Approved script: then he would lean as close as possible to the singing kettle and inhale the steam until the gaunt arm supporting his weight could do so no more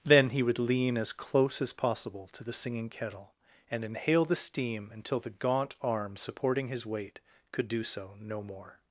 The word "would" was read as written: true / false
true